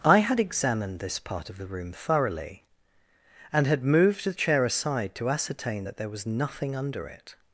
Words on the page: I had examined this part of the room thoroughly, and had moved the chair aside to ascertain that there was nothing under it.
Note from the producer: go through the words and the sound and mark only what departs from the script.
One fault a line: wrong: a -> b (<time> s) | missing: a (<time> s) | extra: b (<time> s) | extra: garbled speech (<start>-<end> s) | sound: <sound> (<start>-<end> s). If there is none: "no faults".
no faults